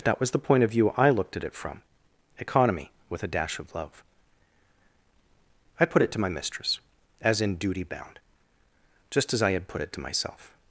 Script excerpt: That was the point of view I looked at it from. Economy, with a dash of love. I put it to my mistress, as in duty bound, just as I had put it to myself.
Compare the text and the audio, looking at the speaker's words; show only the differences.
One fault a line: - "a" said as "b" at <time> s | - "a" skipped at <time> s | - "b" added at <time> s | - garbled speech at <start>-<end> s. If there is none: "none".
none